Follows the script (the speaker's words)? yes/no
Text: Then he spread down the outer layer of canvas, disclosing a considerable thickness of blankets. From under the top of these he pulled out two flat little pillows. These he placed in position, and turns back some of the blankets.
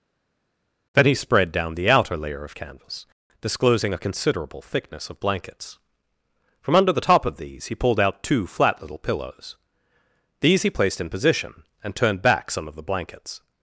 no